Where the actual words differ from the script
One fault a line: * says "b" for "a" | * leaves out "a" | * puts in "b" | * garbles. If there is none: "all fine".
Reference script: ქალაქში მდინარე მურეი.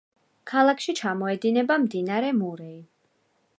* puts in "ჩამოედინება"